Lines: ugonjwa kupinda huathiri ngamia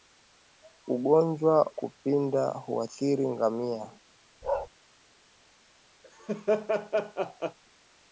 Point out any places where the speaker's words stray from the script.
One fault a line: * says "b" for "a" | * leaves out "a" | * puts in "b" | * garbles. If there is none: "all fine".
all fine